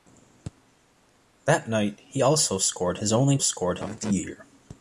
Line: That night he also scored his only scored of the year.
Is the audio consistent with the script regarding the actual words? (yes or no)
yes